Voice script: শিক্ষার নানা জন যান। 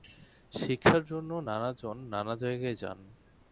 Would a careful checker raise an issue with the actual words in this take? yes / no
yes